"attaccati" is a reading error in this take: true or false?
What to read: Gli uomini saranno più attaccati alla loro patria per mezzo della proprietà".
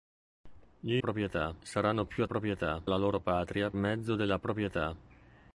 true